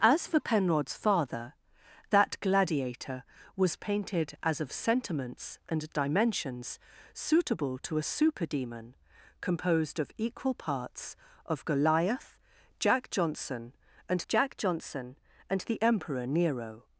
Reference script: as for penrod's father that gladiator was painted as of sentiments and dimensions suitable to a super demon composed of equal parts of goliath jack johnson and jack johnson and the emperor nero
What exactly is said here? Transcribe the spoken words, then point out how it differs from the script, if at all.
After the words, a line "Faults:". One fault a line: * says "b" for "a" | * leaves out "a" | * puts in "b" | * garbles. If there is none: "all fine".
as for penrod's father that gladiator was painted as of sentiments and dimensions suitable to a super demon composed of equal parts of goliath jack johnson and jack johnson and the emperor nero
Faults:
all fine